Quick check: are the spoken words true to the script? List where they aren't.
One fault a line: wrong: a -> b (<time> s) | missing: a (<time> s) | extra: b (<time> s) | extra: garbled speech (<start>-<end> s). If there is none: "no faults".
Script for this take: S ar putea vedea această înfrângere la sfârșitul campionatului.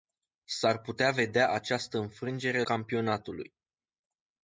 missing: la sfârșitul (2.6 s)